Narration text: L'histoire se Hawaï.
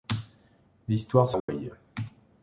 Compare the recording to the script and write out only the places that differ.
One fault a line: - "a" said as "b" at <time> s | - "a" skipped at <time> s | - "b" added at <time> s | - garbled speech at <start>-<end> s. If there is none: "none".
none